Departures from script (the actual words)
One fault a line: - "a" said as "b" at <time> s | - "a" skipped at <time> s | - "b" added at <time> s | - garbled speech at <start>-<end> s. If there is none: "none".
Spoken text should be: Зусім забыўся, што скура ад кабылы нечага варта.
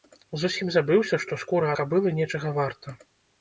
- "ад" skipped at 1.7 s